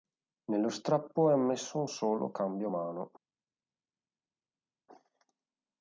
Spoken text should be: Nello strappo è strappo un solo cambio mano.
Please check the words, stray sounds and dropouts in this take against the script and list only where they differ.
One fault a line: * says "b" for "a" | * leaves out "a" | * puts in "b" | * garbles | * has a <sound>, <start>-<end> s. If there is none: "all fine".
* says "ammesso" for "strappo"